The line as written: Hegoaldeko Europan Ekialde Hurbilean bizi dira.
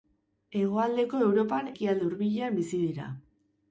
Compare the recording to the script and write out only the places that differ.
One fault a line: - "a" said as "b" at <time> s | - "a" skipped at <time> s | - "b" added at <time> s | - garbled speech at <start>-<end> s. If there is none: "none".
none